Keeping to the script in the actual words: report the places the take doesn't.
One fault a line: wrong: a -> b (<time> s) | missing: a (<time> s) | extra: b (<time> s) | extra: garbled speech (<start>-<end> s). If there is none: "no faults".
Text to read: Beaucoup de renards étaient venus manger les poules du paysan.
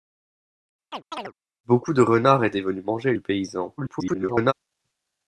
missing: les poules (3.1 s)
extra: garbled speech (3.8-4.5 s)